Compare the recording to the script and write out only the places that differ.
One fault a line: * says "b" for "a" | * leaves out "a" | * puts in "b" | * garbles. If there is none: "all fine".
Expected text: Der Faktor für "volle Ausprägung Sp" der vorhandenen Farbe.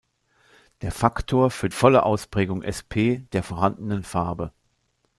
all fine